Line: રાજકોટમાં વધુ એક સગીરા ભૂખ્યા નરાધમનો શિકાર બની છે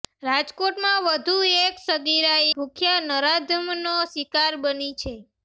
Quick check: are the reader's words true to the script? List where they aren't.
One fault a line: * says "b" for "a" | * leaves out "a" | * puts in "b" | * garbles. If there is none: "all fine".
all fine